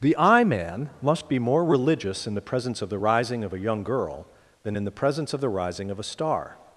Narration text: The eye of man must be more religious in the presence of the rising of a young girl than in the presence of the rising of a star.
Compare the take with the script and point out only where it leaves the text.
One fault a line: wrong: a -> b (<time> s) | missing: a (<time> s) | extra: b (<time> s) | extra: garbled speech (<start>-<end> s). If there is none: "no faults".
missing: of (0.4 s)